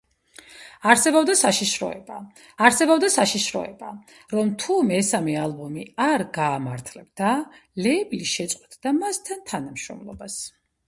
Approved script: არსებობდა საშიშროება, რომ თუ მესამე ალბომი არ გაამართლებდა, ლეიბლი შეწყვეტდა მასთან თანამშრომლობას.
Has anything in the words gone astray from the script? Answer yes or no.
yes